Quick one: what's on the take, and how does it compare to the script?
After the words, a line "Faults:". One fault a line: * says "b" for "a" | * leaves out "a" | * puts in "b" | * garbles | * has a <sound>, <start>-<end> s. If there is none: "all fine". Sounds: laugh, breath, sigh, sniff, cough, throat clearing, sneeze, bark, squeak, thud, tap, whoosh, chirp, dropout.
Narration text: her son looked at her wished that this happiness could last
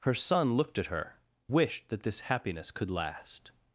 her son looked at her wished that this happiness could last
Faults:
all fine